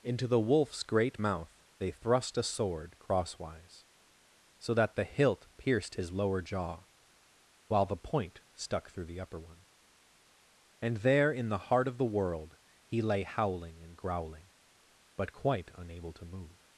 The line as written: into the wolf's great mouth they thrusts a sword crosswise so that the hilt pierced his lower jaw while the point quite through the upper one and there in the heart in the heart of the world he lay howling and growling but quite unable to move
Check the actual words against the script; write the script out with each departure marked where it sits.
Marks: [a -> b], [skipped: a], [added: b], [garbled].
into the wolf's great mouth they [thrusts -> thrust] a sword crosswise so that the hilt pierced his lower jaw while the point [quite -> stuck] through the upper one and there in the heart [skipped: in the heart] of the world he lay howling and growling but quite unable to move